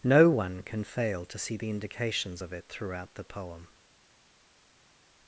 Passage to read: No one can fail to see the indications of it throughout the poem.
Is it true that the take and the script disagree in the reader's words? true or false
false